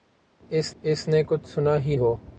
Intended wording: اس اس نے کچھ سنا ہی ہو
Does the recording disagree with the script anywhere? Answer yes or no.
no